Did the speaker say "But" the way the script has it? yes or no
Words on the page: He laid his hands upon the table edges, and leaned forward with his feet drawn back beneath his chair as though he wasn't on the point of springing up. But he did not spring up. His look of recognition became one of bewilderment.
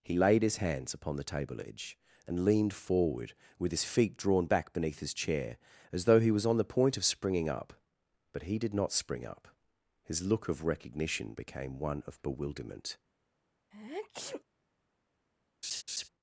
yes